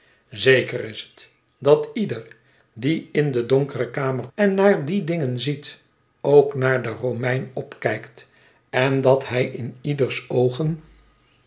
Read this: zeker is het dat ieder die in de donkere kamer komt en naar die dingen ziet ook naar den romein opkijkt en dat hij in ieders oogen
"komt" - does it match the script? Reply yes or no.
no